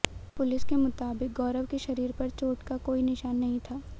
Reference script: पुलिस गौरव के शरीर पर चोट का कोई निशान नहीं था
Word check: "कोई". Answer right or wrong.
right